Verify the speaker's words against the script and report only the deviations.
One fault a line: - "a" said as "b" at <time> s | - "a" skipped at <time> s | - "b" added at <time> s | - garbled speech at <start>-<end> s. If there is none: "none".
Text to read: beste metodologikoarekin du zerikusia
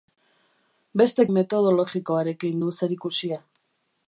none